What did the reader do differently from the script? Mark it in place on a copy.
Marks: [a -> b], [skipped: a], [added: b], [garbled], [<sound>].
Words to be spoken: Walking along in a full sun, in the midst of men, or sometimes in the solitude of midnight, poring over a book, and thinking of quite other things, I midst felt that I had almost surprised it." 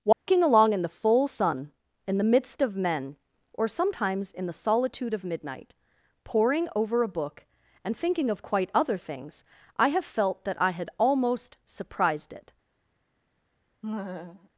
Walking [dropout] along in [a -> the] full sun, in the midst of men, or sometimes in the solitude of midnight, poring over a book, and thinking of quite other things, I [midst -> have] felt that I had almost surprised it." [laugh]